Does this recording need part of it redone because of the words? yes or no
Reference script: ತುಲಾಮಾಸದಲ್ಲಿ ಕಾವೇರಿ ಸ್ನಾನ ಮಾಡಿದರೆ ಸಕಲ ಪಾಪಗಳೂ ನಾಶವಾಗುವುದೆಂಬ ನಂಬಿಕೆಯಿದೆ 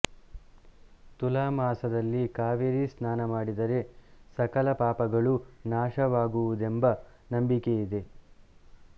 no